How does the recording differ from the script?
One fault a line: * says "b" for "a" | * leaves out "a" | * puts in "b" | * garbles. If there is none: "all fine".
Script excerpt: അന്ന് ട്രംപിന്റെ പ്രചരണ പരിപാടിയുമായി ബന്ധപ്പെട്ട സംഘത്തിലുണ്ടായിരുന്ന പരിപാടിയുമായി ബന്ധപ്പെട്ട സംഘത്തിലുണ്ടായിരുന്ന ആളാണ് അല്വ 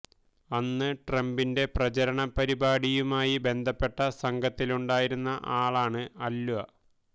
* leaves out "പരിപാടിയുമായി ബന്ധപ്പെട്ട സംഘത്തിലുണ്ടായിരുന്ന"